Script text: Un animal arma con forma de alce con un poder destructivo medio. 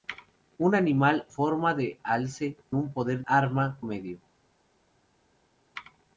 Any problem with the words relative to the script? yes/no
yes